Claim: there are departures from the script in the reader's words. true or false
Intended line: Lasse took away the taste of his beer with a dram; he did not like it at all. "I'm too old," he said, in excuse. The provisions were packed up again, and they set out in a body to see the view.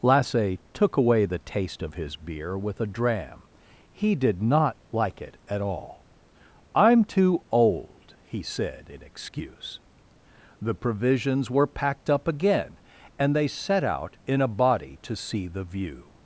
false